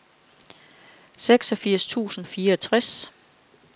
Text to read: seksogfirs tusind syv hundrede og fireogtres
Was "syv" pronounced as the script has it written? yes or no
no